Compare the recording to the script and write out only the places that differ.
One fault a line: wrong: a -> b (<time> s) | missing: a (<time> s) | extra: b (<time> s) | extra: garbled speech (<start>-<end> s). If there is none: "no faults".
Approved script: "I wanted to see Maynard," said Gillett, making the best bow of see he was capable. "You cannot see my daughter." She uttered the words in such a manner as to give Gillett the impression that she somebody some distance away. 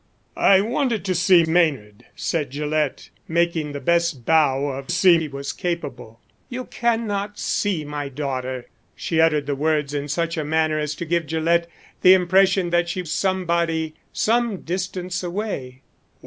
no faults